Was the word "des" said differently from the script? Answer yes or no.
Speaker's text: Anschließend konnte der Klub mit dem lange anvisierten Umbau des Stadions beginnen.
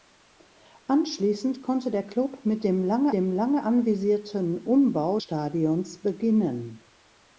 yes